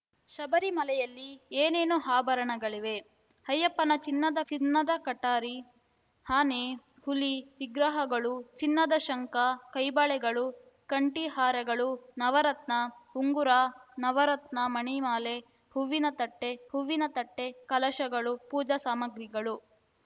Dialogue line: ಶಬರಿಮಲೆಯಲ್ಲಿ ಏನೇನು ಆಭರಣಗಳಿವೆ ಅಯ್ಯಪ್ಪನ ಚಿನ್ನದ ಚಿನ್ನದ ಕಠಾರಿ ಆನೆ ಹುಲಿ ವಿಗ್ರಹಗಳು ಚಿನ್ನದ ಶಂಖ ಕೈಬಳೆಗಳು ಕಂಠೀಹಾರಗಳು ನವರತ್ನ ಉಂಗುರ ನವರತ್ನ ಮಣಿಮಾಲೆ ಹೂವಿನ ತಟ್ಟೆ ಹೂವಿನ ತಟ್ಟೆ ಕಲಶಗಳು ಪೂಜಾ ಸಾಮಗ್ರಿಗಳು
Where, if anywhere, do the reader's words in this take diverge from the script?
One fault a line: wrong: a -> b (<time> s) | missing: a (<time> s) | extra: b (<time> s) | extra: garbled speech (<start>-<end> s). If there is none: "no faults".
no faults